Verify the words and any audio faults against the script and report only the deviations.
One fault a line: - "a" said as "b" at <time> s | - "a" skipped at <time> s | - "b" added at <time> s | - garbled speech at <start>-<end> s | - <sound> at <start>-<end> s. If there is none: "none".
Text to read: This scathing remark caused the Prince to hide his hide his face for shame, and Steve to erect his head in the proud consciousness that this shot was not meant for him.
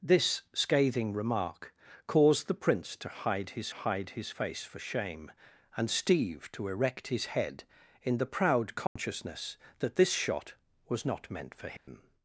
- dropout at 8.9-9.0 s
- dropout at 11.8-11.9 s